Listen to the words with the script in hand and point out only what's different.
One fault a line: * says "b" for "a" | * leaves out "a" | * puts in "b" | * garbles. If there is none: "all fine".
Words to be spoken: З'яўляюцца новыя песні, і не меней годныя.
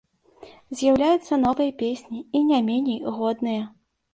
all fine